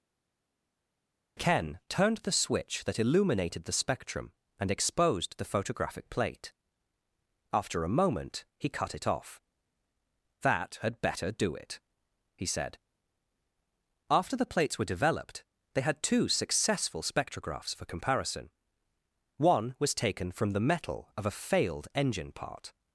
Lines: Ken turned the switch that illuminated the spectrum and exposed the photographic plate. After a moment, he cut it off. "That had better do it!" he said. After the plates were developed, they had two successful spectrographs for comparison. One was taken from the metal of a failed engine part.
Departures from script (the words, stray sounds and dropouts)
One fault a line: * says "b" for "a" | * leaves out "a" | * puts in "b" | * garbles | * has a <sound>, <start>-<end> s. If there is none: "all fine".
all fine